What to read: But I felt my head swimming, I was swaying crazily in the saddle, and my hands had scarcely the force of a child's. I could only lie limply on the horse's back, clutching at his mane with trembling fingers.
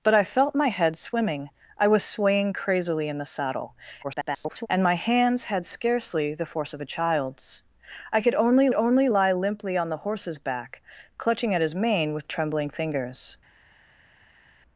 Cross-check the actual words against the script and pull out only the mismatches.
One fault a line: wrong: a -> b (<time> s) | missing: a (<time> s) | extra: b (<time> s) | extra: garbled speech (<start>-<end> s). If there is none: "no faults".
extra: garbled speech (4.0-4.7 s)
extra: only (8.7 s)